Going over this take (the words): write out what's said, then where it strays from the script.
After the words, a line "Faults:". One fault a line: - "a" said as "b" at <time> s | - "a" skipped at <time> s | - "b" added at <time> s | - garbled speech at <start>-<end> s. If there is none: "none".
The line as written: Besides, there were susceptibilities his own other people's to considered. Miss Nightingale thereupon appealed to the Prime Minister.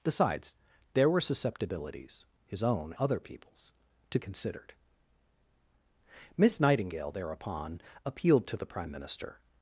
Besides, there were susceptibilities his own other people's to considered. Miss Nightingale thereupon appealed to the Prime Minister.
Faults:
none